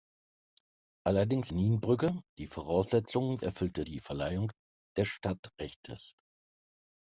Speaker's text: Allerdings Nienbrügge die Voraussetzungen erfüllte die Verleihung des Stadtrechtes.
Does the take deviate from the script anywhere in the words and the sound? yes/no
no